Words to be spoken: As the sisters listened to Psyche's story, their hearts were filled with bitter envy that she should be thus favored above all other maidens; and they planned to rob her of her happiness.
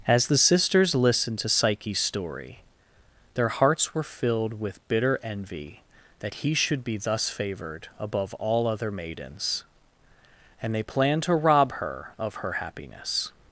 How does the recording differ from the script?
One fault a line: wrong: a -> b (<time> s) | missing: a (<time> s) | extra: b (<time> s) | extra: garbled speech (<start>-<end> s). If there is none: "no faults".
wrong: she -> he (6.4 s)